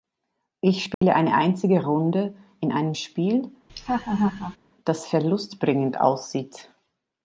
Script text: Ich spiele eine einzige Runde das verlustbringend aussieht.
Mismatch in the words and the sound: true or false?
true